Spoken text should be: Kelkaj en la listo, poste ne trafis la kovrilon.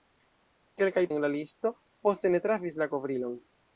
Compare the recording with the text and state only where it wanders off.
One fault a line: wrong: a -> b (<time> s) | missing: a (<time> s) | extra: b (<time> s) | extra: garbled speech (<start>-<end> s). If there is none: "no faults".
no faults